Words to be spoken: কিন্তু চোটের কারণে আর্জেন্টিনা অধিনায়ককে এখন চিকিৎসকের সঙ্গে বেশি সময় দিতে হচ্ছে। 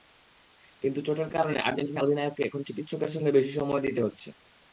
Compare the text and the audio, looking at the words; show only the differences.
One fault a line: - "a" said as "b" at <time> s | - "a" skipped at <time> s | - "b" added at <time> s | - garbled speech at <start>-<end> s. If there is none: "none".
none